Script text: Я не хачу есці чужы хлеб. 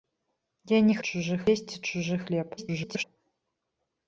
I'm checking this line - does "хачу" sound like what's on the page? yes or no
no